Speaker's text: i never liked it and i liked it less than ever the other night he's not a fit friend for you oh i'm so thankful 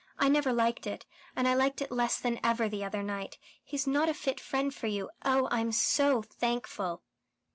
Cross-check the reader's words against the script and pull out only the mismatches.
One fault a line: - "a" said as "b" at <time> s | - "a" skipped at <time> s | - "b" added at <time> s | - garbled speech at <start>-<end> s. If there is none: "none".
none